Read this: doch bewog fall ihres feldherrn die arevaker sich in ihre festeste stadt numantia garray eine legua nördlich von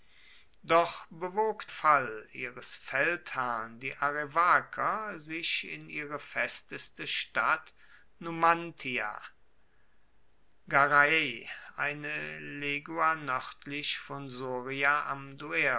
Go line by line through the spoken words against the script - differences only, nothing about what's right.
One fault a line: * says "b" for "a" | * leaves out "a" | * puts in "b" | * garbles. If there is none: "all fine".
all fine